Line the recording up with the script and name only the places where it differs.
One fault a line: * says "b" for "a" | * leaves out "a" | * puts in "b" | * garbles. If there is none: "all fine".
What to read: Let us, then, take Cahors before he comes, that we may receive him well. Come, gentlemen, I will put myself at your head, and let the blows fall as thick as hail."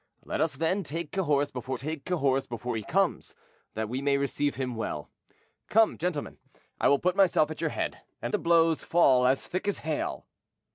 * puts in "take Cahors before"
* leaves out "let"